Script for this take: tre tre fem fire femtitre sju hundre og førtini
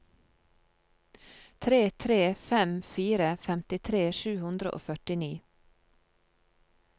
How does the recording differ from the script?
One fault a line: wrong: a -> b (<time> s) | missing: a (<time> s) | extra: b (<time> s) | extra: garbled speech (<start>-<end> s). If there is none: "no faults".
no faults